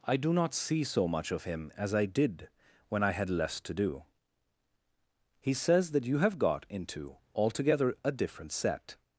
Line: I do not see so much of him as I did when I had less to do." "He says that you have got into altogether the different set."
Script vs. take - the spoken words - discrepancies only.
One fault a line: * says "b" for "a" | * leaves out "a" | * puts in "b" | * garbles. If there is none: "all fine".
* says "a" for "the"